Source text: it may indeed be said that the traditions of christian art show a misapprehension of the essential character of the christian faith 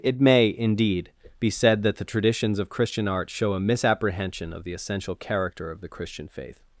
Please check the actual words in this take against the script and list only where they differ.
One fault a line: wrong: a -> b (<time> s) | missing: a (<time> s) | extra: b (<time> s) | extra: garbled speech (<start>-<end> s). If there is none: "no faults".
no faults